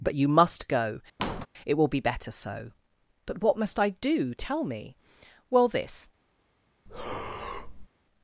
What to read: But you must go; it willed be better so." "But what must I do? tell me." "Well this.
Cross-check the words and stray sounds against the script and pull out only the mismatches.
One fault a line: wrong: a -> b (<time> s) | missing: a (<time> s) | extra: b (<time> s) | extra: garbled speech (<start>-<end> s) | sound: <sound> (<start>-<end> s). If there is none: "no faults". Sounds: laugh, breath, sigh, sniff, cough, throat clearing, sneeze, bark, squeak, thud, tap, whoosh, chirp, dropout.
sound: squeak (1.2-1.5 s)
wrong: willed -> will (1.7 s)
sound: breath (6.9-7.9 s)